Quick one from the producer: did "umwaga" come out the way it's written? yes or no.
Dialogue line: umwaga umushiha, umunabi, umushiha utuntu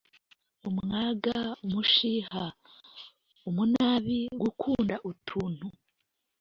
yes